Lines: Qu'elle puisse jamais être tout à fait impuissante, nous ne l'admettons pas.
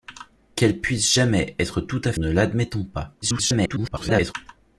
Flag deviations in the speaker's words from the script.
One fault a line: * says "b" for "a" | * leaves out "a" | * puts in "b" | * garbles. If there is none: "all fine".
* leaves out "fait impuissante nous"
* garbles